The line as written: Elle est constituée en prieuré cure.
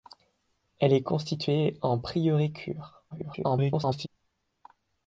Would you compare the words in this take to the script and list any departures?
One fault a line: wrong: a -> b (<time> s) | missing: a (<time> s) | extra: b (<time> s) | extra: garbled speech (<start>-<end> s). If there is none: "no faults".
extra: garbled speech (3.1-4.1 s)